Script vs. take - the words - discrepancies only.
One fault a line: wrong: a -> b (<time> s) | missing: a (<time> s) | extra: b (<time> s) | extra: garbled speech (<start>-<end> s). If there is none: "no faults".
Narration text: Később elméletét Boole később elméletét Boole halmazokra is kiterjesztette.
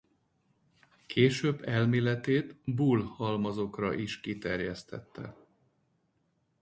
missing: később elméletét Boole (3.0 s)